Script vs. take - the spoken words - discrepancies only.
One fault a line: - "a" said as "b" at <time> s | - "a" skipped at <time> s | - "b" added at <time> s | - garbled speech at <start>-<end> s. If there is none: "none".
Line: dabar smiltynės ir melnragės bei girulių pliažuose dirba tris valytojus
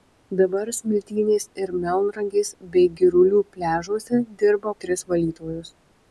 none